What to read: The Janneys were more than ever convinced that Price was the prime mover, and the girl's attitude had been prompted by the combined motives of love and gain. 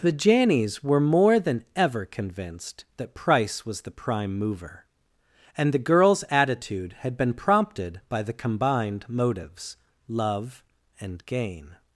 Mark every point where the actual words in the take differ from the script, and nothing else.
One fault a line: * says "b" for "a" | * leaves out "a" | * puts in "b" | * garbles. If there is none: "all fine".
* leaves out "of"